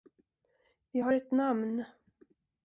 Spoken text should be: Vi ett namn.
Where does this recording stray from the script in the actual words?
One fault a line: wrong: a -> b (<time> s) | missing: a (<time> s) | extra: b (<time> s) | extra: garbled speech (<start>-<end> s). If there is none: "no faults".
extra: har (1.0 s)